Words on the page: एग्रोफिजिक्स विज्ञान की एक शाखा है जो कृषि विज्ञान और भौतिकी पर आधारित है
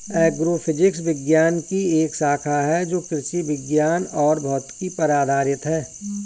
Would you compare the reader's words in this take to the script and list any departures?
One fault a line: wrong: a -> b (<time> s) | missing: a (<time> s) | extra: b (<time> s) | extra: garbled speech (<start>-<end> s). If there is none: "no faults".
no faults